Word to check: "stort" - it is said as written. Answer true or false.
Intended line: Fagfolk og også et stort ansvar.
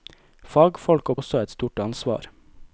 true